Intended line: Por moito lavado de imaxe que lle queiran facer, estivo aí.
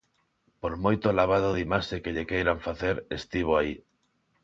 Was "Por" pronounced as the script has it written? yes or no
yes